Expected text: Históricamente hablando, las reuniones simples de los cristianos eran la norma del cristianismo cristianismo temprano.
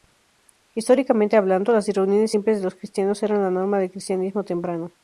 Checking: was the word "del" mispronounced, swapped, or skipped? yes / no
no